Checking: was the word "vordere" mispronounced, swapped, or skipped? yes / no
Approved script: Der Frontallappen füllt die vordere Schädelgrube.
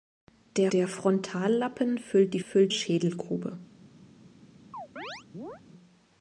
yes